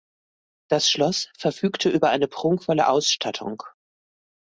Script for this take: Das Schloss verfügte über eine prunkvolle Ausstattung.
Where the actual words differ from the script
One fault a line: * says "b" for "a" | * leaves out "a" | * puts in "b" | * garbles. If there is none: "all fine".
all fine